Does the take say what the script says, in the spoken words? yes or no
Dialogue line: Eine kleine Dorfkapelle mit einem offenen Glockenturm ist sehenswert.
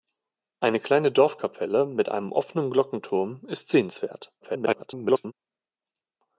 no